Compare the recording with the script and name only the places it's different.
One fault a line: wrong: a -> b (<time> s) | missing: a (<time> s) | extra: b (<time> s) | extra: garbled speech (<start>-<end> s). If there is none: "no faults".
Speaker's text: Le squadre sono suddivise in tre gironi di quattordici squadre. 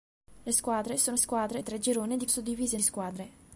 wrong: suddivise -> squadre (1.2 s)
wrong: quattordici -> suddivise (2.3 s)